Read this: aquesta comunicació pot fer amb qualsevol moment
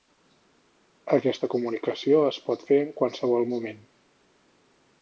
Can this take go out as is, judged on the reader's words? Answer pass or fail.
fail